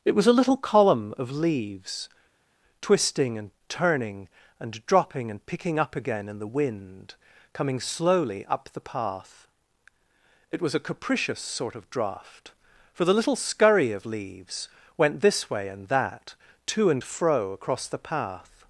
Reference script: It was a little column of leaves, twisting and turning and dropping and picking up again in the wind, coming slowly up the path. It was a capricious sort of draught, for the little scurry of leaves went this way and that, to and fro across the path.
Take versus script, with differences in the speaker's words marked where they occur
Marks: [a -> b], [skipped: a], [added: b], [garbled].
It was a little column of leaves, twisting and turning and dropping and picking up again in the wind, coming slowly up the path. It was a capricious sort of draught, for the little scurry of leaves went this way and that, to and fro across the path.